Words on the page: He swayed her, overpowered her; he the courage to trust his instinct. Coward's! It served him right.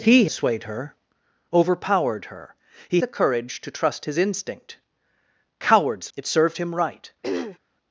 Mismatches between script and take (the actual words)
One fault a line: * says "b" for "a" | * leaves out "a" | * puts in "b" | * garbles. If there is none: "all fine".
all fine